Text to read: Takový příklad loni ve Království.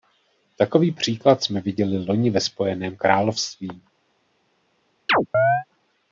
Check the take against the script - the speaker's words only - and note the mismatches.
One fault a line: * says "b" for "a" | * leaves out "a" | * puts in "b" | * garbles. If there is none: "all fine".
* puts in "jsme viděli"
* puts in "Spojeném"